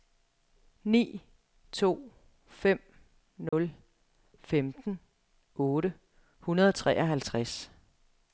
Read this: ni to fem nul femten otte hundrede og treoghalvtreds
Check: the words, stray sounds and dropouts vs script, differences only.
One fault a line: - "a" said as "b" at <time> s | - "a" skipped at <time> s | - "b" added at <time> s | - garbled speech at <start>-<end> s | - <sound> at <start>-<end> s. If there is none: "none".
- dropout at 3.5-3.5 s